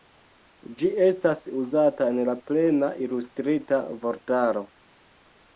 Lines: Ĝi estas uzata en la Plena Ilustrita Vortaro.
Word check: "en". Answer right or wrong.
right